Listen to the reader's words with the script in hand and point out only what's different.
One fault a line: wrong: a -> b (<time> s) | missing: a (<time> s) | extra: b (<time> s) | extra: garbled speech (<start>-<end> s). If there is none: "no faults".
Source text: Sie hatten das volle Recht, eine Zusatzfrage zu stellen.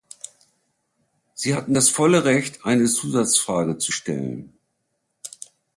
no faults